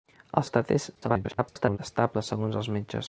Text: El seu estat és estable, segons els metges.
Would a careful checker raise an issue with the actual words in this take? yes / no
yes